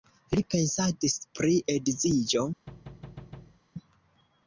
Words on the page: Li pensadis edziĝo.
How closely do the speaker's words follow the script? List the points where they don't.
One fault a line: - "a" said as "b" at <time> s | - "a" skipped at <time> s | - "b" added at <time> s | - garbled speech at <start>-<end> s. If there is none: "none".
- "pri" added at 1.4 s